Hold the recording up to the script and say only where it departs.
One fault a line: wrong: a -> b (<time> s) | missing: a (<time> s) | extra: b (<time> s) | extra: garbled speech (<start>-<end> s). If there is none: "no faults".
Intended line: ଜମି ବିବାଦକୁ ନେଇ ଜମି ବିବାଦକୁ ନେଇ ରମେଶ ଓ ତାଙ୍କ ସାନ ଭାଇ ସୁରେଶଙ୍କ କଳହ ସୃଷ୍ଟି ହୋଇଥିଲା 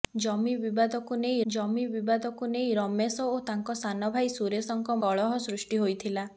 no faults